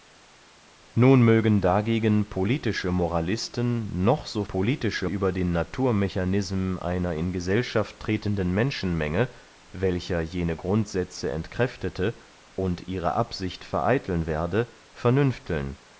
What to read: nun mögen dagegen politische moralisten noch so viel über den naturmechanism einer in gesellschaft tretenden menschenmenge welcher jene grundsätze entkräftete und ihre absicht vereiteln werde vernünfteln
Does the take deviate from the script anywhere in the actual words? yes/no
yes